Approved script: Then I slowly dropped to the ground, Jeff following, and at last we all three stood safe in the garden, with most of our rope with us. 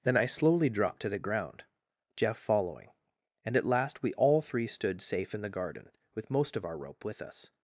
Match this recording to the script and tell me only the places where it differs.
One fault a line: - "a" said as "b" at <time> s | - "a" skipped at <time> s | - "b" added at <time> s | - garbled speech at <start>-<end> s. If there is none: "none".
none